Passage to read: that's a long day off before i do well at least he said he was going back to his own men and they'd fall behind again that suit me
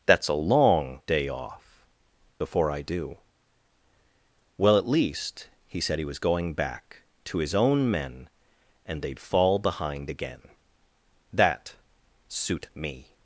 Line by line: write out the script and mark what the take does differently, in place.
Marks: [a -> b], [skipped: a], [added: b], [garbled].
that's a long day off before i do well at least he said he was going back to his own men and they'd fall behind again that suit me